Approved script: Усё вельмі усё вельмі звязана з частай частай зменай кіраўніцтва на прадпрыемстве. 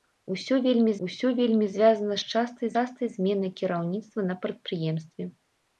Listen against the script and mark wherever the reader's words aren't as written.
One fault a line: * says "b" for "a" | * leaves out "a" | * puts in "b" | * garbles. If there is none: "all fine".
all fine